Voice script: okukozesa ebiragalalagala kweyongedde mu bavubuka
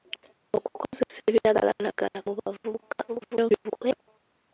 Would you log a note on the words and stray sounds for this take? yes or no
yes